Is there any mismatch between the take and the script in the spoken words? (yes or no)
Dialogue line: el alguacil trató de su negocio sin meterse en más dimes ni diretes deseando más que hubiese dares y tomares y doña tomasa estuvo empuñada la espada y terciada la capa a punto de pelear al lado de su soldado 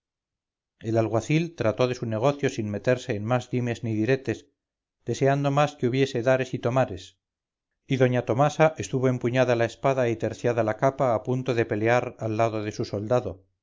no